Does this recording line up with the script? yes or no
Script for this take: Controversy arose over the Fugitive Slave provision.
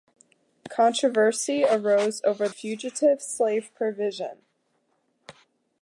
no